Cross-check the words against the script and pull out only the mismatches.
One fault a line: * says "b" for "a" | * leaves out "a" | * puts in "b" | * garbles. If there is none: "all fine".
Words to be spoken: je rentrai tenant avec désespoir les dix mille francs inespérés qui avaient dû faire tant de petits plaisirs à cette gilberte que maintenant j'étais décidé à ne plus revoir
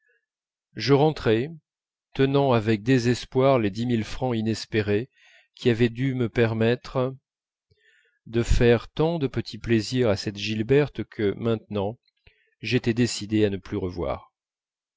* puts in "me permettre de"